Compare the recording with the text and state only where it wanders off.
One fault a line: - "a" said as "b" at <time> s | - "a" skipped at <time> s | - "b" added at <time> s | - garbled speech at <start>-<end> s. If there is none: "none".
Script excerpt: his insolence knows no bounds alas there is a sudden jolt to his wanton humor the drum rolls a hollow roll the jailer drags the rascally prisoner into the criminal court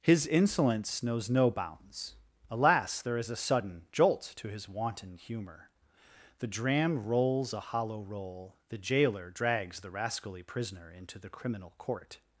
- "drum" said as "dram" at 6.5 s